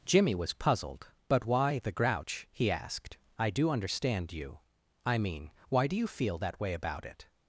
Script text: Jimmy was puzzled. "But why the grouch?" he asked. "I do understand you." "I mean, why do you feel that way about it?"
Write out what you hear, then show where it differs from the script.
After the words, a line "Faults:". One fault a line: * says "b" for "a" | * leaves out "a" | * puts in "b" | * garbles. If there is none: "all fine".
Jimmy was puzzled. "But why the grouch?" he asked. "I do understand you." "I mean, why do you feel that way about it?"
Faults:
all fine